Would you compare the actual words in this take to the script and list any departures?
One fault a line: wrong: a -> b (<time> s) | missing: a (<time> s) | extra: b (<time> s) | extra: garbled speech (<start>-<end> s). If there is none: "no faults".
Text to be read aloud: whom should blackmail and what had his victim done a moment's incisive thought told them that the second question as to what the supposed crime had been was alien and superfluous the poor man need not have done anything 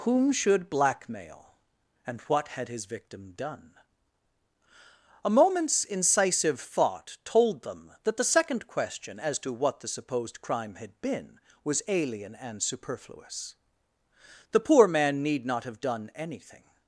no faults